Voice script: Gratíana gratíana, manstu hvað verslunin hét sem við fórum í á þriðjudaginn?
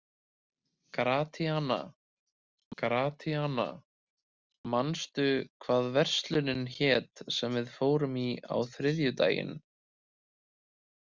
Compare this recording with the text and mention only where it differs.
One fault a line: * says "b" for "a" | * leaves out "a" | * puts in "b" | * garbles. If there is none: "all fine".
all fine